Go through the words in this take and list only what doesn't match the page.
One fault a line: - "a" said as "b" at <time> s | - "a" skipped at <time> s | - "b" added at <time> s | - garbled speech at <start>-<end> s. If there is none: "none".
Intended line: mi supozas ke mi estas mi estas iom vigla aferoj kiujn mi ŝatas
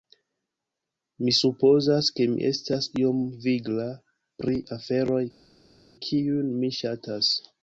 - "mi estas" skipped at 2.9 s
- "pri" added at 4.4 s